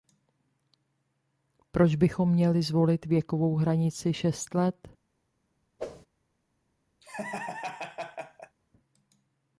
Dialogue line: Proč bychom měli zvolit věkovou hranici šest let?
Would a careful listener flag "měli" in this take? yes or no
no